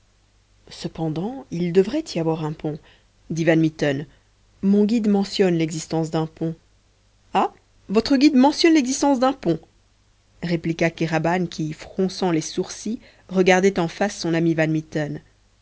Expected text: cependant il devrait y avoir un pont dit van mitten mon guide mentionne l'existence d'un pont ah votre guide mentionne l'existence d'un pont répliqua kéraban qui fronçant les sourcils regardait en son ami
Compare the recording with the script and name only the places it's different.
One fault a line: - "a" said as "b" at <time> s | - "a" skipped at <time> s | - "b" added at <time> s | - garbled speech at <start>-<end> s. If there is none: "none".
- "face" added at 13.9 s